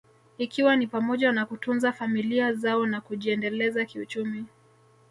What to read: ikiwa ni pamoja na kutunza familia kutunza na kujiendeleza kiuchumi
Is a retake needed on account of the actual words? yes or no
yes